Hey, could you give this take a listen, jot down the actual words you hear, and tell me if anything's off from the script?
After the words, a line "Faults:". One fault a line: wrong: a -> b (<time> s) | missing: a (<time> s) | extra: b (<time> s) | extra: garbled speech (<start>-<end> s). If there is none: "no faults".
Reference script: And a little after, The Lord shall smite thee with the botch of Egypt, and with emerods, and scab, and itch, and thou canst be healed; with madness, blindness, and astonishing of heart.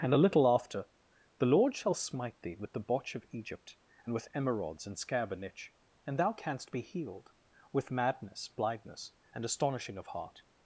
And a little after, The Lord shall smite thee with the botch of Egypt, and with emerods, and scab, and itch, and thou canst be healed; with madness, blindness, and astonishing of heart.
Faults:
no faults